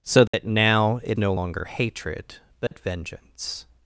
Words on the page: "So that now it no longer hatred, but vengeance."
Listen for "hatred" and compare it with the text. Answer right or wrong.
right